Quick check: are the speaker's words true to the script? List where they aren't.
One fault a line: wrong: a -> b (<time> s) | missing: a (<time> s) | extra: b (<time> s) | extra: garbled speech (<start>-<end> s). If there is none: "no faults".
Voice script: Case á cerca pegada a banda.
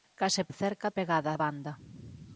no faults